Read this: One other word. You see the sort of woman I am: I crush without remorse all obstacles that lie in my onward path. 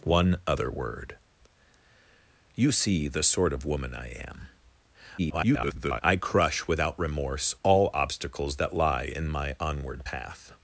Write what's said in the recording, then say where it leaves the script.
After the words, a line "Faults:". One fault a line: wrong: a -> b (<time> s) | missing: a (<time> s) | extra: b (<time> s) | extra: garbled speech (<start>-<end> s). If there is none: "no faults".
One other word. You see the sort of woman I am: [garbled] I crush without remorse all obstacles that lie in my onward path.
Faults:
extra: garbled speech (5.2-6.0 s)